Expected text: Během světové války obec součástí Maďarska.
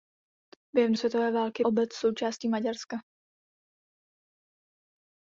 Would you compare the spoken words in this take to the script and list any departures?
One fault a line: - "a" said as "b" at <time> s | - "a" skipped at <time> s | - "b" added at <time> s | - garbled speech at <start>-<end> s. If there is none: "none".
none